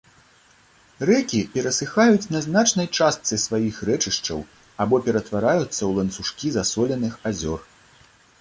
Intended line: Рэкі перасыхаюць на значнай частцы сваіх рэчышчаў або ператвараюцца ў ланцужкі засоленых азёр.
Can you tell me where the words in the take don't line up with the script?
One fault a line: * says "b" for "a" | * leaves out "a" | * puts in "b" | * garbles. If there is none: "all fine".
all fine